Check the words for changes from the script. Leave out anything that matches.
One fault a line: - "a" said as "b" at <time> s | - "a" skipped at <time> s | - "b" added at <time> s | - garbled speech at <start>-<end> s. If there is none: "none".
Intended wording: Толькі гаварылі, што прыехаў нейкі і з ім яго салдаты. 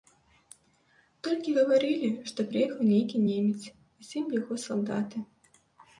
- "немец" added at 3.3 s